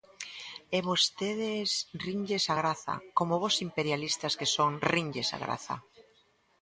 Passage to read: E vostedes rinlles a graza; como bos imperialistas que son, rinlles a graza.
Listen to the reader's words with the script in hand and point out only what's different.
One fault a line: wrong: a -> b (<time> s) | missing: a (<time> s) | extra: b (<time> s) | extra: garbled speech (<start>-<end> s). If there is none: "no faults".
no faults